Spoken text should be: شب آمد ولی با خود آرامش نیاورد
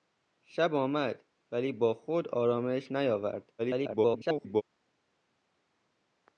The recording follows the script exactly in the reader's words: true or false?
false